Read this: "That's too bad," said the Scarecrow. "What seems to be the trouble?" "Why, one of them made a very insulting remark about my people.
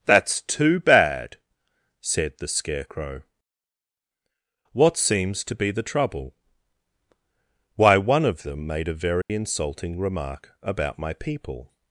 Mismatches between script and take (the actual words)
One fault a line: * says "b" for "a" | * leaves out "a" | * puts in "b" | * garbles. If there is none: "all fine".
all fine